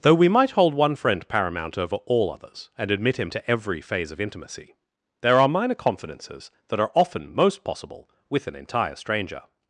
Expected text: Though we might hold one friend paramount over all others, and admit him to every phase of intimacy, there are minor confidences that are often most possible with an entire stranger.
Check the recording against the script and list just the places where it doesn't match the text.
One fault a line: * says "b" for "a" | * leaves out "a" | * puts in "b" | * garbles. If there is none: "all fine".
all fine